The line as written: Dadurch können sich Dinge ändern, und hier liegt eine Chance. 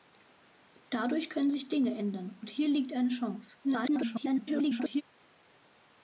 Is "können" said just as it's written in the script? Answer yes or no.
yes